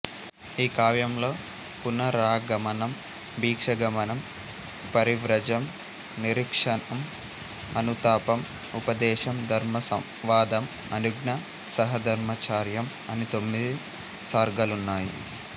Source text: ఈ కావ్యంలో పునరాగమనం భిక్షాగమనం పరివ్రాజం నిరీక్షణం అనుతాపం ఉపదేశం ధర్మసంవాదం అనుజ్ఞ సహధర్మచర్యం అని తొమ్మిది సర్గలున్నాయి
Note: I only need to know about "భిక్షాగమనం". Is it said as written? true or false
true